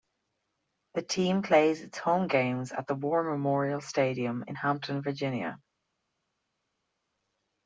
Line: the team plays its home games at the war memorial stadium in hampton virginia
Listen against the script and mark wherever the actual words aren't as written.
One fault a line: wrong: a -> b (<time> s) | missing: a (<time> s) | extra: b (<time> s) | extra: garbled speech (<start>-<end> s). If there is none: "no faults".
no faults